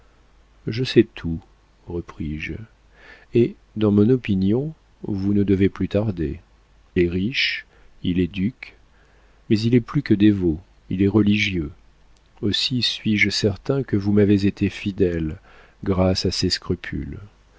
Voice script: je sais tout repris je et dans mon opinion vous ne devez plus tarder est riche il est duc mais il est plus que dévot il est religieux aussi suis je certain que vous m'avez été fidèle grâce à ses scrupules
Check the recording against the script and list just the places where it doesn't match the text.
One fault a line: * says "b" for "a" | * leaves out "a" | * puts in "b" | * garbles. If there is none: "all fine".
all fine